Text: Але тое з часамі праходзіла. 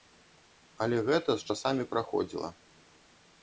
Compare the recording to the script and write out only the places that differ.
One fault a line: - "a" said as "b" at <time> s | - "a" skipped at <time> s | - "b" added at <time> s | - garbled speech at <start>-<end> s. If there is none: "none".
- "тое" said as "гэта" at 1.1 s